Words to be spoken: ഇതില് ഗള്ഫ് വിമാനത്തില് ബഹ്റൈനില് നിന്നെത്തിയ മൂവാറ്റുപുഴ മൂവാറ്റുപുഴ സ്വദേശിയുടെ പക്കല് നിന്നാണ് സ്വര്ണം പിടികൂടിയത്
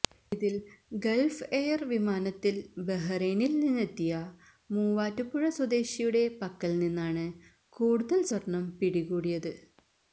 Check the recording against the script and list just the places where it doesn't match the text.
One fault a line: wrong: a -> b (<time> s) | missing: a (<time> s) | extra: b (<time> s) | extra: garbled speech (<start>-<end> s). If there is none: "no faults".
extra: എയര് (1.5 s)
missing: മൂവാറ്റുപുഴ (5.4 s)
extra: കൂടുതല് (7.8 s)